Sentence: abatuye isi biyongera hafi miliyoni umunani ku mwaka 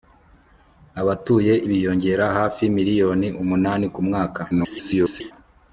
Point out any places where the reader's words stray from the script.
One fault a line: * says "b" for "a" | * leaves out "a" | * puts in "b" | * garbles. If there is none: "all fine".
* leaves out "isi"
* garbles